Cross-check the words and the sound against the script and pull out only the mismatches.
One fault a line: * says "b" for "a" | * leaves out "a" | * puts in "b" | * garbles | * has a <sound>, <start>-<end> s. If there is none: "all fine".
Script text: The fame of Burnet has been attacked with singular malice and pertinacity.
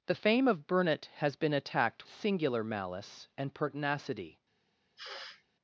* leaves out "with"
* has a sniff, 5.0-5.4 s